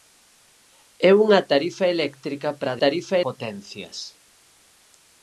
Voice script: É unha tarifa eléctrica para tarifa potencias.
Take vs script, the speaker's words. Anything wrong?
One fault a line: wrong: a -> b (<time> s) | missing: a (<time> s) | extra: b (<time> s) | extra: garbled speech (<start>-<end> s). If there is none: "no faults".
no faults